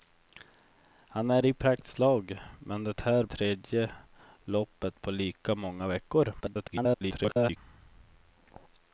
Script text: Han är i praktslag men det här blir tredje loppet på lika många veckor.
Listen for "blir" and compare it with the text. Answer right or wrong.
wrong